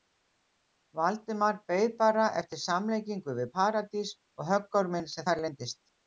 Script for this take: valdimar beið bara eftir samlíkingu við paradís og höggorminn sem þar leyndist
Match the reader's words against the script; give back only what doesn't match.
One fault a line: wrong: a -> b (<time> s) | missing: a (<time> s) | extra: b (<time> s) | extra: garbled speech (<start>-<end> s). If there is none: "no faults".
no faults